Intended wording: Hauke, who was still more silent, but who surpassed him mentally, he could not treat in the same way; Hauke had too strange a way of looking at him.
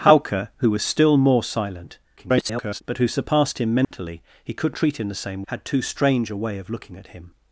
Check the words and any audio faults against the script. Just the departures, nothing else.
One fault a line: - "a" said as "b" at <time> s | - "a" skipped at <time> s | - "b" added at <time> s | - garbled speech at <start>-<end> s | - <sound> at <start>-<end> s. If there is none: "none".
- garbled speech at 2.2-2.8 s
- dropout at 3.8-3.9 s
- "not" skipped at 4.8 s
- "way Hauke" skipped at 5.4 s